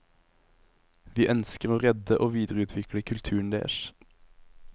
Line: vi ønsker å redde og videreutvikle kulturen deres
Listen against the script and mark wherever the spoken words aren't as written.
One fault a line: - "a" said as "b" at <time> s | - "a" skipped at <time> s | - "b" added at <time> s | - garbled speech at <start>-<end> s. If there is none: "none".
none